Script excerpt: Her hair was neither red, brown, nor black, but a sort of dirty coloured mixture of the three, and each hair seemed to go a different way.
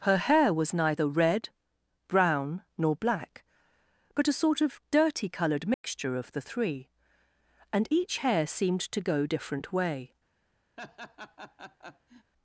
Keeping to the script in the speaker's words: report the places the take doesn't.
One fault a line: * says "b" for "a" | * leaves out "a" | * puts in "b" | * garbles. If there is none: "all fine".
* leaves out "a"